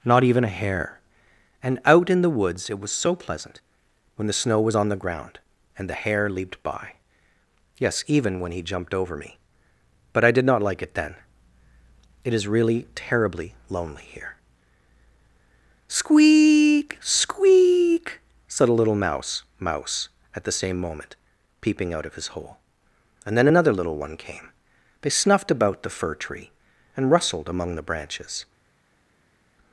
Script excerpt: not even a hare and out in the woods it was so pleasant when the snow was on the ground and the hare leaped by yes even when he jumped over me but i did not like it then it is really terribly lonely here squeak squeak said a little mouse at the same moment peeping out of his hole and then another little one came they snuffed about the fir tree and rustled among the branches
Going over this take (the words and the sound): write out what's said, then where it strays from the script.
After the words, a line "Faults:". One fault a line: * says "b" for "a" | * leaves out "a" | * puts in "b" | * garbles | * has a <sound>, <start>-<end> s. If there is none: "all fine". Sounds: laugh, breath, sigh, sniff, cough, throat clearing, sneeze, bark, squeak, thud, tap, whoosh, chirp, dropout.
not even a hare and out in the woods it was so pleasant when the snow was on the ground and the hare leaped by yes even when he jumped over me but i did not like it then it is really terribly lonely here squeak squeak said a little mouse mouse at the same moment peeping out of his hole and then another little one came they snuffed about the fir tree and rustled among the branches
Faults:
* puts in "mouse"